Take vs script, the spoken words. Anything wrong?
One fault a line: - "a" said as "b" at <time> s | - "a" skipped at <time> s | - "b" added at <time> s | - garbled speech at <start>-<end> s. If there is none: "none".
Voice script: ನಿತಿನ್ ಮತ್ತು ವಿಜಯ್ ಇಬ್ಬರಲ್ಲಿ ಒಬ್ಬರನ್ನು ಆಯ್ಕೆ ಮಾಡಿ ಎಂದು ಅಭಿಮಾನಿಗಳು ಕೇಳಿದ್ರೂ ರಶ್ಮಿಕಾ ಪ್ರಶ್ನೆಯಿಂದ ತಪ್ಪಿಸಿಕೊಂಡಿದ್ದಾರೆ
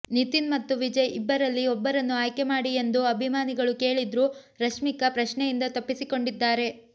none